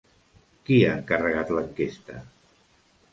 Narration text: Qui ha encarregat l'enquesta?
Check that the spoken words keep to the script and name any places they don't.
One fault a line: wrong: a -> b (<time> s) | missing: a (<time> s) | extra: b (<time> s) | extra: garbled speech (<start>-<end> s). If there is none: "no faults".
no faults